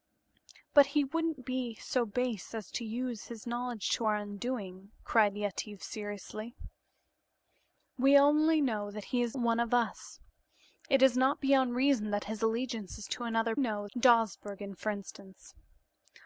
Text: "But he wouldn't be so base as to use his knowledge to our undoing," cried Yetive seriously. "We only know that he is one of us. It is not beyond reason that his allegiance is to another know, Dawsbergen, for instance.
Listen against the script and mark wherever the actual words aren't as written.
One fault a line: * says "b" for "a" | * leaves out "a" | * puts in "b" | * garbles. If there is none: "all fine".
all fine